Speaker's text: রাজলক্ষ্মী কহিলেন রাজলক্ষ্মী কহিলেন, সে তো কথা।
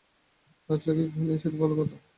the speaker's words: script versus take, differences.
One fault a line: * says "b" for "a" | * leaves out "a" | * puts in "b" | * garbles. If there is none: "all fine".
* leaves out "রাজলক্ষ্মী কহিলেন"
* puts in "ভালো"